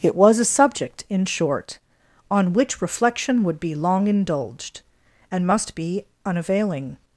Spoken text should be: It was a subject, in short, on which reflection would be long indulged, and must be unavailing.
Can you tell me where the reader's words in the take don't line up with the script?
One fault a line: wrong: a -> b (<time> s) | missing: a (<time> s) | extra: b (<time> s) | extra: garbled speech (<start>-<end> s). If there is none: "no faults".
no faults